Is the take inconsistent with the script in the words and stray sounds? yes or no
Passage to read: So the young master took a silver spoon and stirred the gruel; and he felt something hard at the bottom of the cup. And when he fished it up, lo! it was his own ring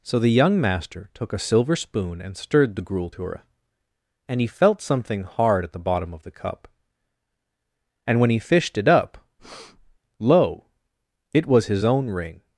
yes